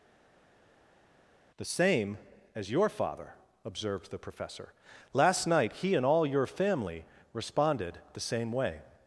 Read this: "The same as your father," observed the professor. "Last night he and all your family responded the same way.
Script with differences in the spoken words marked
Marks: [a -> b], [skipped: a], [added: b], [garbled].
"The same as your father," observed the professor. "Last night he and all your family responded the same way.